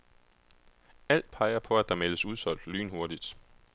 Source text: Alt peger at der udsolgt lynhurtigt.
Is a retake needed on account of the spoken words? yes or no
yes